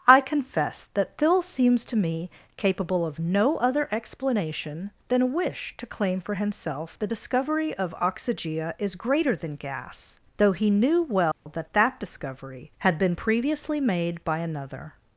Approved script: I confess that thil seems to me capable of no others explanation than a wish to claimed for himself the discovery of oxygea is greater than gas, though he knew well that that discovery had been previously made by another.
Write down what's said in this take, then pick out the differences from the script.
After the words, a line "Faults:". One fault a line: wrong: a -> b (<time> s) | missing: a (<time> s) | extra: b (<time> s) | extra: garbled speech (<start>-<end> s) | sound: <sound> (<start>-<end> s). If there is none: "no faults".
I confess that thil seems to me capable of no other explanation than a wish to claim for himself the discovery of oxygea is greater than gas, though he knew well that that discovery had been previously made by another.
Faults:
wrong: others -> other (3.6 s)
wrong: claimed -> claim (5.8 s)
sound: dropout (11.3-11.5 s)